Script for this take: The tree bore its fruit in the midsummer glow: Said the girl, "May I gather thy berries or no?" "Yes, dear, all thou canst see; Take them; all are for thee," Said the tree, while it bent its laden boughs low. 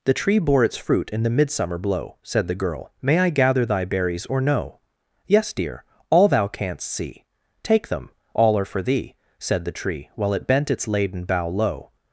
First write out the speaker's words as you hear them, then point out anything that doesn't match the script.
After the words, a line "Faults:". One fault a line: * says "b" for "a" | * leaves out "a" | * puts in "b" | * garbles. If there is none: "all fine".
The tree bore its fruit in the midsummer blow: Said the girl, "May I gather thy berries or no?" "Yes, dear, all thou canst see; Take them; all are for thee," Said the tree, while it bent its laden bough low.
Faults:
* says "blow" for "glow"
* says "bough" for "boughs"